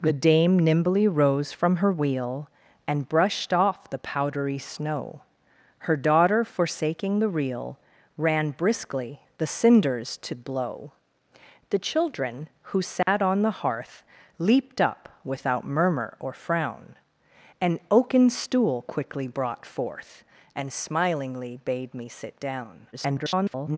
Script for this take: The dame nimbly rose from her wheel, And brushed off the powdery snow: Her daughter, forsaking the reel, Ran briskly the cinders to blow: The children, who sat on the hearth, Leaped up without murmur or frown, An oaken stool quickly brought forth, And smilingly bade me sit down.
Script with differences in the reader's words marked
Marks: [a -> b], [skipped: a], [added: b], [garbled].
The dame nimbly rose from her wheel, And brushed off the powdery snow: Her daughter, forsaking the reel, Ran briskly the cinders to blow: The children, who sat on the hearth, Leaped up without murmur or frown, An oaken stool quickly brought forth, And smilingly bade me sit down. [garbled]